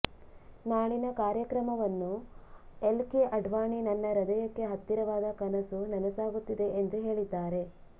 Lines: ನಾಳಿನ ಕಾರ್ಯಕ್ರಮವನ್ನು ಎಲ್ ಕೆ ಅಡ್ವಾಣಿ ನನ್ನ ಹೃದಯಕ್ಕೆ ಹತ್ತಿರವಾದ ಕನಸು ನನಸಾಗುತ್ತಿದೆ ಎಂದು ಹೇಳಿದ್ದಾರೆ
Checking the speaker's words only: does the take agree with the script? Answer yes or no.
yes